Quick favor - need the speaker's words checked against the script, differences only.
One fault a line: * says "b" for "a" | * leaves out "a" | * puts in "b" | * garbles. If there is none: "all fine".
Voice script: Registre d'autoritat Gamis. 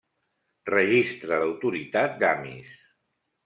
all fine